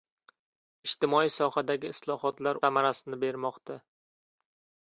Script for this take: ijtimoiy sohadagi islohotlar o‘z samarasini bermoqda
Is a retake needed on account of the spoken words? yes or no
yes